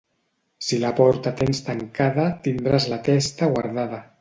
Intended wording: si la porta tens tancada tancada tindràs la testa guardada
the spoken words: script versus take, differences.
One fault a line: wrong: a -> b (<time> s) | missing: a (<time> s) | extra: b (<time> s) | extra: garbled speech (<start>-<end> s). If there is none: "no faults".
missing: tancada (2.3 s)